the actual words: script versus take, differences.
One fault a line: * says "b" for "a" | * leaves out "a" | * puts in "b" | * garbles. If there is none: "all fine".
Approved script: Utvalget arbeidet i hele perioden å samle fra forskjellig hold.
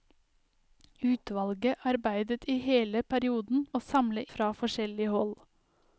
all fine